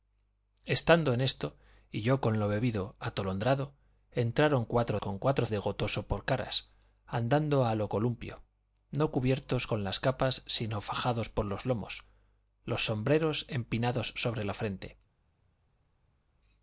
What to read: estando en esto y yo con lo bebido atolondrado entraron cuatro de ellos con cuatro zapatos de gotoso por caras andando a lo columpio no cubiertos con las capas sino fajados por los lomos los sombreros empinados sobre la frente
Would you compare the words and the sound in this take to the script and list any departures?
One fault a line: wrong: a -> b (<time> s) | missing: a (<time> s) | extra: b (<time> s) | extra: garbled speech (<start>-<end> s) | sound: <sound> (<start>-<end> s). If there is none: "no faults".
missing: de ellos (5.0 s)
missing: zapatos (5.5 s)